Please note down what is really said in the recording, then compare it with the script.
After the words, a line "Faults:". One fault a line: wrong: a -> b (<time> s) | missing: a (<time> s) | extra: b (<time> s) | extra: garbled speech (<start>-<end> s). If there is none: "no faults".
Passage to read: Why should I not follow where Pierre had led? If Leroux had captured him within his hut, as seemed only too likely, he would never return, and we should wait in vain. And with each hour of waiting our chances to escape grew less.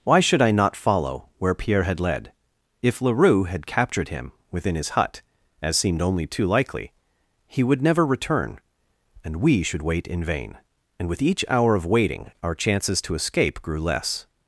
Why should I not follow where Pierre had led? If Leroux had captured him within his hut, as seemed only too likely, he would never return, and we should wait in vain. And with each hour of waiting our chances to escape grew less.
Faults:
no faults